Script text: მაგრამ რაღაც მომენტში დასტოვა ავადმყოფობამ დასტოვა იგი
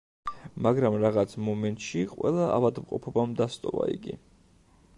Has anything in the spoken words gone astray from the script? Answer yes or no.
yes